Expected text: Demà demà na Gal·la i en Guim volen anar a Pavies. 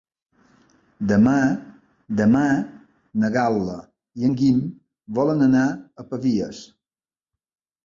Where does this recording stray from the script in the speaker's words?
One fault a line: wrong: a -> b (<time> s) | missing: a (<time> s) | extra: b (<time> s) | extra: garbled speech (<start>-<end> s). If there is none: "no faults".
no faults